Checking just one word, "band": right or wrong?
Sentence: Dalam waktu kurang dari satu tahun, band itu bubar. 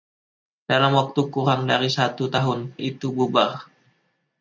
wrong